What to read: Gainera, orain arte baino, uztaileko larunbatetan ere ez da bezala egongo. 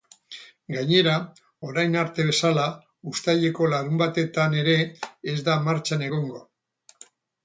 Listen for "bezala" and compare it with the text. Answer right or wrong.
wrong